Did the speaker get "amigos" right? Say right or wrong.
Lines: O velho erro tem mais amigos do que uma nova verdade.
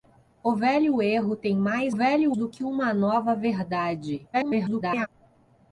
wrong